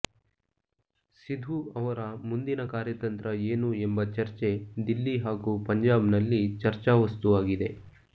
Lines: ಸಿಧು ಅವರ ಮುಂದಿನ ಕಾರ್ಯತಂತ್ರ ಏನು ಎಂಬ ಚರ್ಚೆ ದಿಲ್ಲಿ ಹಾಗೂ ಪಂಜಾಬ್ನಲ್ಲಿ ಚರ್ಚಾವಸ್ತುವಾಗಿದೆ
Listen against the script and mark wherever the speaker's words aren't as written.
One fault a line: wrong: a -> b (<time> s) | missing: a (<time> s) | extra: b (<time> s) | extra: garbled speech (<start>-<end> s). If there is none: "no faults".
no faults